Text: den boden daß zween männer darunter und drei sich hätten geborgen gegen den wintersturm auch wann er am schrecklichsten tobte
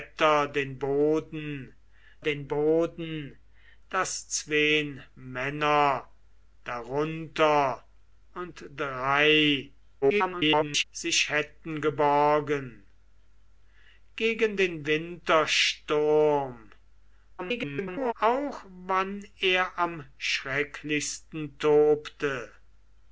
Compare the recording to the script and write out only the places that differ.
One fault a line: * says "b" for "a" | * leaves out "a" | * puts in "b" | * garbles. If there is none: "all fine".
* puts in "den boden"
* garbles
* garbles